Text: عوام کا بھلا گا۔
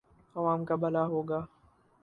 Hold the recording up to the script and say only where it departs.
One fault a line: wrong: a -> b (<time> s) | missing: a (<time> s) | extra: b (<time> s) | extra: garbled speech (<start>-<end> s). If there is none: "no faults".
extra: ہو (1.0 s)